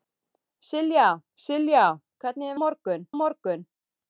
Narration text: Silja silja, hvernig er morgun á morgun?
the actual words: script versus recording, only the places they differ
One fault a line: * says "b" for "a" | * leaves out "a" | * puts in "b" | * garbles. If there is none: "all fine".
all fine